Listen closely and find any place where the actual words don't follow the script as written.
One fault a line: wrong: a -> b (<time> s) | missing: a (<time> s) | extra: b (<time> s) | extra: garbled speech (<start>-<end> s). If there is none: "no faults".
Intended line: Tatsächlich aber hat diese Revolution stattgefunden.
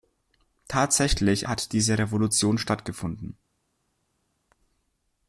missing: aber (1.5 s)